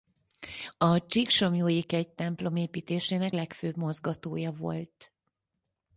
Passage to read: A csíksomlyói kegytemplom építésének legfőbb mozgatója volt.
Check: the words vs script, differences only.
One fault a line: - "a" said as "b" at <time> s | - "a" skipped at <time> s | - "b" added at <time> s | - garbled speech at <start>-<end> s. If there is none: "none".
none